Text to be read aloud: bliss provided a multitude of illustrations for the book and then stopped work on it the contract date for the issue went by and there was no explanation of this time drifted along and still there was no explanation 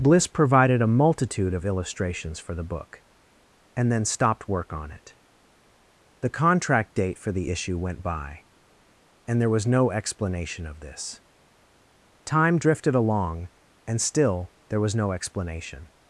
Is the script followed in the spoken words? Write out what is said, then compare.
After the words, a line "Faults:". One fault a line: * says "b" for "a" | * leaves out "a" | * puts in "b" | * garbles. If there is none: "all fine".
bliss provided a multitude of illustrations for the book and then stopped work on it the contract date for the issue went by and there was no explanation of this time drifted along and still there was no explanation
Faults:
all fine